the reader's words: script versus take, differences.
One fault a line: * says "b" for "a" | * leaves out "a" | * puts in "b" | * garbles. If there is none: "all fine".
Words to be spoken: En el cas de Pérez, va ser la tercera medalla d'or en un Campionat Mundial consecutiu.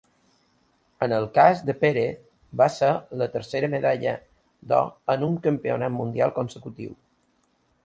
all fine